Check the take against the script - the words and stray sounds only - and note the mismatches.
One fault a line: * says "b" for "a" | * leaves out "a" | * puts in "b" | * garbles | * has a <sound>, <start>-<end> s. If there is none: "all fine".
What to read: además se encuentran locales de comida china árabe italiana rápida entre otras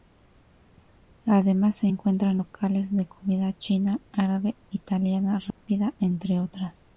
* has a dropout, 5.5-5.6 s